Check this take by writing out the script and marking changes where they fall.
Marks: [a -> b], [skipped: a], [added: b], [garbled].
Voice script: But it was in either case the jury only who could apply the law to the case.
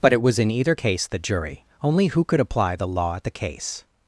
But it was in either case the jury only who could apply the law [to -> at] the case.